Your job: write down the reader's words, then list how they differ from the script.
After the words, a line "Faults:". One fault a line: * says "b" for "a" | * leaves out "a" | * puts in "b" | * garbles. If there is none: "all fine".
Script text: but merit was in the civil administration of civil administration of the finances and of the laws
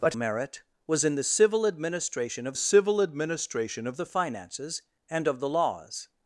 but merit was in the civil administration of civil administration of the finances and of the laws
Faults:
all fine